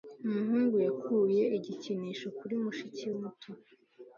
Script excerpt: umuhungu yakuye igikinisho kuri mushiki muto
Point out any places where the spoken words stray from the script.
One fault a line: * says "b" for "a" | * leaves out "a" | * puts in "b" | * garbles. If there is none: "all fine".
all fine